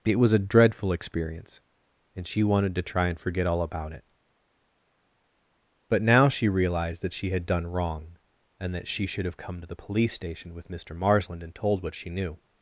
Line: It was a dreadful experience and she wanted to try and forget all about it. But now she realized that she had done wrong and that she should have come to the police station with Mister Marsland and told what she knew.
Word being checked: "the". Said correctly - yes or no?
yes